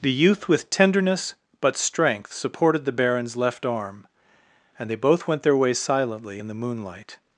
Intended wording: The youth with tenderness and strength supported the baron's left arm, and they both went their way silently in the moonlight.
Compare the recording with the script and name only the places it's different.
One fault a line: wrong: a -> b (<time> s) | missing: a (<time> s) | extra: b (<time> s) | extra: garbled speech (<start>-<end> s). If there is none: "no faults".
wrong: and -> but (1.6 s)